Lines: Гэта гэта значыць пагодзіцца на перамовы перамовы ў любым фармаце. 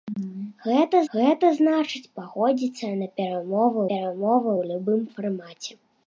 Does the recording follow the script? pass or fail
pass